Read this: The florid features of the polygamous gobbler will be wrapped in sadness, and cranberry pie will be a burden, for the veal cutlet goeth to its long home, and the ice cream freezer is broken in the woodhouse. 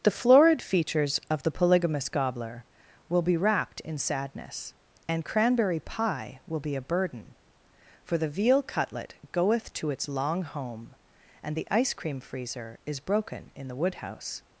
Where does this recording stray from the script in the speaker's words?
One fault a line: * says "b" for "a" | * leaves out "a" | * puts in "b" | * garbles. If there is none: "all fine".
all fine